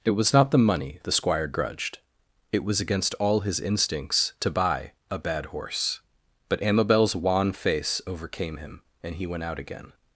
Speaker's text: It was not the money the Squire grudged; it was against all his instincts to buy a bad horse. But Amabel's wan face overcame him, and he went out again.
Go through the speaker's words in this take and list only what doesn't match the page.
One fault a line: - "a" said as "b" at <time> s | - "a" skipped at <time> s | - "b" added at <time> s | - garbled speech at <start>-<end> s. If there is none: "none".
none